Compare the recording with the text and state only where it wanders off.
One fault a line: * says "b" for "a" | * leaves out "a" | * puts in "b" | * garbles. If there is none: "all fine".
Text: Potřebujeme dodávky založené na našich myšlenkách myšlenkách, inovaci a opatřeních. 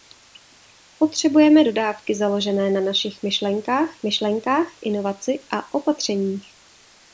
all fine